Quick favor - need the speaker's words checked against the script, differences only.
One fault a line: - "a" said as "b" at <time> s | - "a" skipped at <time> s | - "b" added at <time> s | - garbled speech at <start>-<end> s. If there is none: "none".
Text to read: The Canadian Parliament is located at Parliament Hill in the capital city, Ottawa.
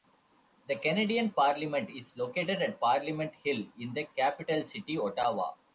none